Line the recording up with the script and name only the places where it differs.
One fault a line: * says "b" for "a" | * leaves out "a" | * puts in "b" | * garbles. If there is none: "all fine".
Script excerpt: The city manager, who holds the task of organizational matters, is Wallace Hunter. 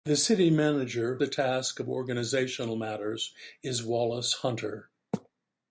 * leaves out "who holds"